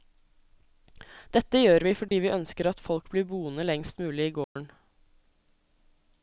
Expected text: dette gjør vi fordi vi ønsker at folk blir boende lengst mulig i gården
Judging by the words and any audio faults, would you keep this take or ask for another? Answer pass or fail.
fail